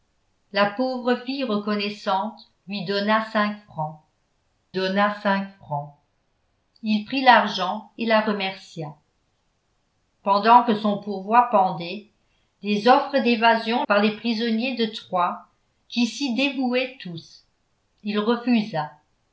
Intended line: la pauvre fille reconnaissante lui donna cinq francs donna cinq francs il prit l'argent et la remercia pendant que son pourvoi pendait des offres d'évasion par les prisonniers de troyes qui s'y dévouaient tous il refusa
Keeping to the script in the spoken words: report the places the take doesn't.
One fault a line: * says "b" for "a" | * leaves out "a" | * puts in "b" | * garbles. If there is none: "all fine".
all fine